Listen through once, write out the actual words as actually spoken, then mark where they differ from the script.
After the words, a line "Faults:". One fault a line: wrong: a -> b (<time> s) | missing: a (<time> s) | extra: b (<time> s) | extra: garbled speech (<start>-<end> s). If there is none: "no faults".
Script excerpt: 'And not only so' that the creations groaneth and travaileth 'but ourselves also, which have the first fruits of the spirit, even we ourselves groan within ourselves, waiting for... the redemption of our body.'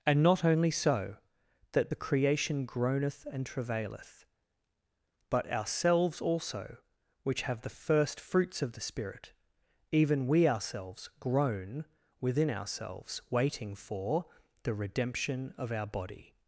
'And not only so' that the creation groaneth and travaileth 'but ourselves also, which have the first fruits of the spirit, even we ourselves groan within ourselves, waiting for... the redemption of our body.'
Faults:
wrong: creations -> creation (1.9 s)